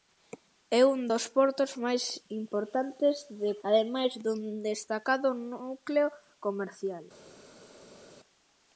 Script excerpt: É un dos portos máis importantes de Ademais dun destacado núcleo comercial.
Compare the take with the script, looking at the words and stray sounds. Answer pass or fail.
pass